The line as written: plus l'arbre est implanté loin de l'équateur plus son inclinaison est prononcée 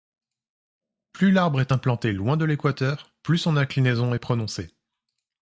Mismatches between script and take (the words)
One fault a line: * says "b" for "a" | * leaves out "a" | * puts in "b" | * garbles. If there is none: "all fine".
all fine